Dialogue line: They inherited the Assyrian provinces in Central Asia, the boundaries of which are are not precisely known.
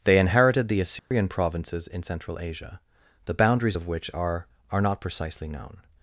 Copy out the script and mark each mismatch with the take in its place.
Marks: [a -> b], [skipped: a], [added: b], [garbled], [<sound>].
They inherited the Assyrian [dropout] provinces in Central Asia, the boundaries of which are are not precisely known.